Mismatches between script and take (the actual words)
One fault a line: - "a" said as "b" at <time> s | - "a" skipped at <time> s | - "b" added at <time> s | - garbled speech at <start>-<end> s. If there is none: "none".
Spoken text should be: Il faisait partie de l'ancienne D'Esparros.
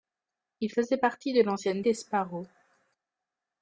none